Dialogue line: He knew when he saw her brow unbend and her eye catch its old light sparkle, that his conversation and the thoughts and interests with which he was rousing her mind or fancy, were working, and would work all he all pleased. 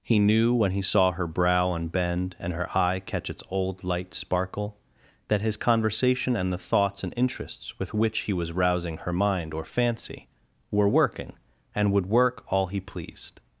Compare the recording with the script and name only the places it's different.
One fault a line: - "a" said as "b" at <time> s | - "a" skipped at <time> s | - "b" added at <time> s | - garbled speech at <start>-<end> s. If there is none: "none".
- "all" skipped at 12.8 s